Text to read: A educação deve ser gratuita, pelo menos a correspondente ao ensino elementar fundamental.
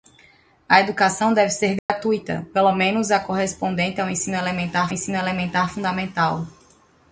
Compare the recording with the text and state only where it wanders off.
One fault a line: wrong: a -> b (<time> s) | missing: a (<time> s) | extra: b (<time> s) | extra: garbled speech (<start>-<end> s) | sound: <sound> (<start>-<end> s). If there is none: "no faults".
sound: dropout (1.8-1.9 s)
extra: ensino elementar (4.9 s)